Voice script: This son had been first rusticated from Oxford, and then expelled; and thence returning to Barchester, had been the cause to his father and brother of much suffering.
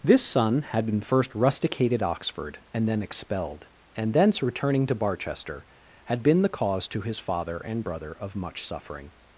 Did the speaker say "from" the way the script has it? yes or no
no